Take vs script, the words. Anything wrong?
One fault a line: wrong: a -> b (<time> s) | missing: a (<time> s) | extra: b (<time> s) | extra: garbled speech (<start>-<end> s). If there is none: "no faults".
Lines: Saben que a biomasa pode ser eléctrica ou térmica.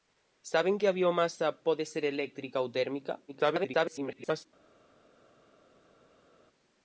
extra: garbled speech (3.3-4.5 s)